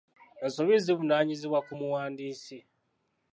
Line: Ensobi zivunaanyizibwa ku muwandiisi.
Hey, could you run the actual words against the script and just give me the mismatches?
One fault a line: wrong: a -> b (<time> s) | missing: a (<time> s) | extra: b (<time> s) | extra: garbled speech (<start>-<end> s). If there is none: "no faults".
no faults